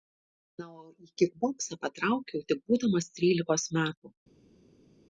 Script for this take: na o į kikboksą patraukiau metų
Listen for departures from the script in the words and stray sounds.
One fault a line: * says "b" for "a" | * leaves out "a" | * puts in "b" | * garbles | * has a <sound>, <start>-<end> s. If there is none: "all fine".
* puts in "tik būdamas trylikos"